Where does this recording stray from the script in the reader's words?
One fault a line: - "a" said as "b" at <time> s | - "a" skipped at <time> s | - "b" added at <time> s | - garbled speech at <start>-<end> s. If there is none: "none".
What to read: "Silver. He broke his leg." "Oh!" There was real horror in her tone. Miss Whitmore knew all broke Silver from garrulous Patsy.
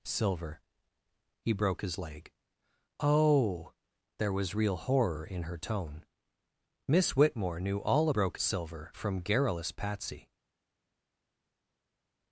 none